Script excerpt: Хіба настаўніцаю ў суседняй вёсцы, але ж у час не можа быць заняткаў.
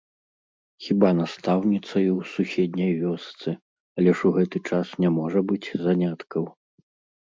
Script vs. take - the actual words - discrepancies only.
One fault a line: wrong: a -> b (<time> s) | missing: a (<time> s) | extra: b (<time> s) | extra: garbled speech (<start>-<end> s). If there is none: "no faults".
extra: гэты (4.4 s)